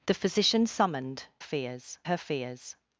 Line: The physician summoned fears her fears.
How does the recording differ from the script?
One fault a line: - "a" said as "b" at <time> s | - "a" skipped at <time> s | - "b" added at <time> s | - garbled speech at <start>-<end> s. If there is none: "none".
none